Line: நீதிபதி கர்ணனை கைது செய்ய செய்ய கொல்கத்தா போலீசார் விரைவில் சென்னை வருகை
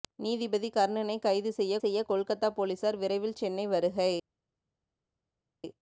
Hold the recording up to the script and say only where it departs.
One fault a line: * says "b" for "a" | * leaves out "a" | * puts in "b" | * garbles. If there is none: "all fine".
all fine